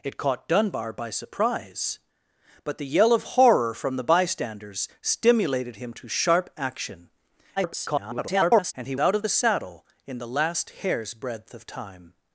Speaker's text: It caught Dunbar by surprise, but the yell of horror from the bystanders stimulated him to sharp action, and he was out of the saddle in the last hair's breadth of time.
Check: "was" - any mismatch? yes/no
yes